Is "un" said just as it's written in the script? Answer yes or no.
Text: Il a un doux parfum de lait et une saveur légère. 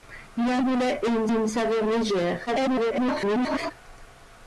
no